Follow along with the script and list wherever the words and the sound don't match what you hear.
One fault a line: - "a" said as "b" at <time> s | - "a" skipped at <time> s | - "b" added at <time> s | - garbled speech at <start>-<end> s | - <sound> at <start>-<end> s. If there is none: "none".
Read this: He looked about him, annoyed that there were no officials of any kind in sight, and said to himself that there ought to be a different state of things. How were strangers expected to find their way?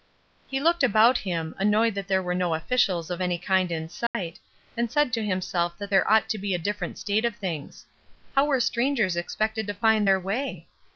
- dropout at 4.1-4.1 s